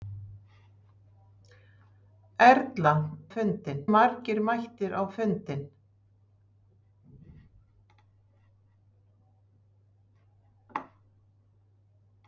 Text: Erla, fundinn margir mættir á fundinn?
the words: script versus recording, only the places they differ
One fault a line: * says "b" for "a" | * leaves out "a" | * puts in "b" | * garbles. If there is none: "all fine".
all fine